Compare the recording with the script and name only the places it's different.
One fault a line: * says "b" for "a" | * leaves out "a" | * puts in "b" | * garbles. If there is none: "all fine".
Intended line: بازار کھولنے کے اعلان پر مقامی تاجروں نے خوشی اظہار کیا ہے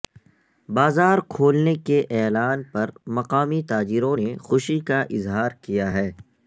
* puts in "کا"